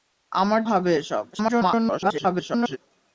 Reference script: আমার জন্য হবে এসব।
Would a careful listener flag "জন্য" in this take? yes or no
yes